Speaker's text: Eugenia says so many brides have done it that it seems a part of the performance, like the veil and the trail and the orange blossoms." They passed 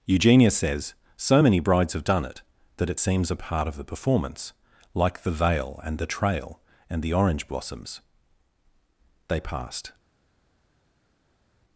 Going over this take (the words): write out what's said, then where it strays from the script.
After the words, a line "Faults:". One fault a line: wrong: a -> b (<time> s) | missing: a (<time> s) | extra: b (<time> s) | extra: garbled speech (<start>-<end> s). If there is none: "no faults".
Eugenia says so many brides have done it that it seems a part of the performance, like the veil and the trail and the orange blossoms." They passed
Faults:
no faults